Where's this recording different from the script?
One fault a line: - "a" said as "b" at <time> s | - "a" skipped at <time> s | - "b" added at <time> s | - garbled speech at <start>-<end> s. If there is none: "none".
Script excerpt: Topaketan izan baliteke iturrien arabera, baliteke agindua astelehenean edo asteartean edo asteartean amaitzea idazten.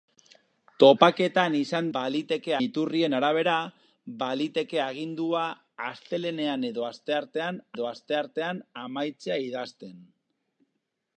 none